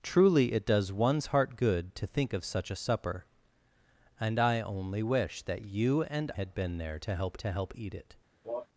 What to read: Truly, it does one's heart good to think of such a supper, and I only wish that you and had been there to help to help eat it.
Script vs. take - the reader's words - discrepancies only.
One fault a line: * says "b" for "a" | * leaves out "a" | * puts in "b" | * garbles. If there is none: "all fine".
all fine